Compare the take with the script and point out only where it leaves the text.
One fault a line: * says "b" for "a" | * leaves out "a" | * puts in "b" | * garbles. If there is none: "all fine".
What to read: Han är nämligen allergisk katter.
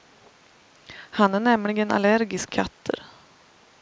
all fine